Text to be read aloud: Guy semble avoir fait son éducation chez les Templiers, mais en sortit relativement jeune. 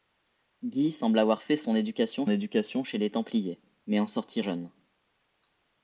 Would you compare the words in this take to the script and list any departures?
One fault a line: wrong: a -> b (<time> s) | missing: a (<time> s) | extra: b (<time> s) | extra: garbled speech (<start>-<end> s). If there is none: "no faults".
extra: éducation (2.3 s)
missing: relativement (4.4 s)